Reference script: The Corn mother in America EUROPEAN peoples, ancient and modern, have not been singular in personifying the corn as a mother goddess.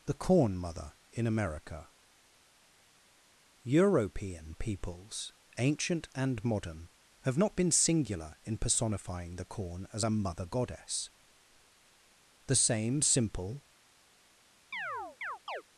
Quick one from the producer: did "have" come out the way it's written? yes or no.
yes